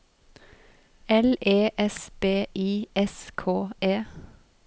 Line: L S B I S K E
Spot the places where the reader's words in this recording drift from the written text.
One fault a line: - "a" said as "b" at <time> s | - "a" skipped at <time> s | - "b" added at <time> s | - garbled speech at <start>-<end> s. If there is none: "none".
- "E" added at 1.4 s